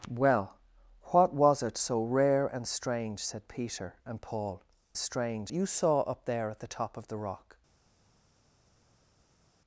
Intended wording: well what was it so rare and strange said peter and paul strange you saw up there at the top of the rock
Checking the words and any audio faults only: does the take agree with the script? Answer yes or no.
yes